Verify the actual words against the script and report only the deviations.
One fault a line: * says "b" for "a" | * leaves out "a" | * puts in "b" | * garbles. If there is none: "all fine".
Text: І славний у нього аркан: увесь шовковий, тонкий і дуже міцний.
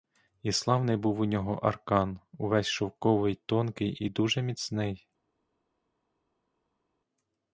* puts in "був"